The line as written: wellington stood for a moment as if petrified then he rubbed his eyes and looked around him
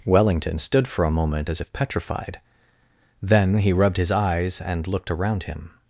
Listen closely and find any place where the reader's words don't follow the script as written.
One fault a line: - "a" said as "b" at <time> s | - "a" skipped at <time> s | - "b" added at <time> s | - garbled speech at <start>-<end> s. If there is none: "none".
none